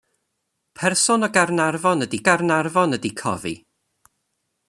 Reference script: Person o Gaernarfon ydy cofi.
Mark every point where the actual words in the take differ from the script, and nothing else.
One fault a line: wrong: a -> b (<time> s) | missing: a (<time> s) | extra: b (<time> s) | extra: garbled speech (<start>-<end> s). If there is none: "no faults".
extra: Gaernarfon ydy (2.3 s)